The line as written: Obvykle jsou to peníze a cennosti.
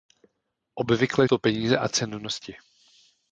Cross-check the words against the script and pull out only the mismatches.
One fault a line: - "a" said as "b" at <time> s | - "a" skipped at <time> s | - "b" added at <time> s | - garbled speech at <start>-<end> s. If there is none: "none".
- "jsou" skipped at 1.2 s